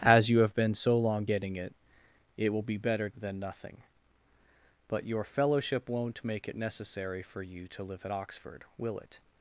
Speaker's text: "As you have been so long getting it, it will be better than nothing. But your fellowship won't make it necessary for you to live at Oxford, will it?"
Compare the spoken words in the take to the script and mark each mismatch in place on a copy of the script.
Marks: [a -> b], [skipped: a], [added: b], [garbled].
"As you have been so long getting it, it will be better than nothing. But your fellowship won't make it necessary for you to live at Oxford, will it?"